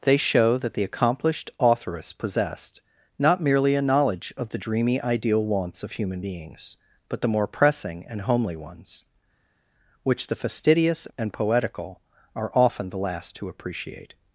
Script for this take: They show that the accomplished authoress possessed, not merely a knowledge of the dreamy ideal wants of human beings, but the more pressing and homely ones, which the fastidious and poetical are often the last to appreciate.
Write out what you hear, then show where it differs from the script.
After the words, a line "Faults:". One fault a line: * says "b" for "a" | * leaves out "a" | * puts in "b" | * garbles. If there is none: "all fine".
They show that the accomplished authoress possessed, not merely a knowledge of the dreamy ideal wants of human beings, but the more pressing and homely ones, which the fastidious and poetical are often the last to appreciate.
Faults:
all fine